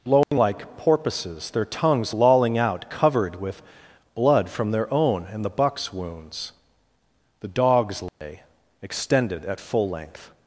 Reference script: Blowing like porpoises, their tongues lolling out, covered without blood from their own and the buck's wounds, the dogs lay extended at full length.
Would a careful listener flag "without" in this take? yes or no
yes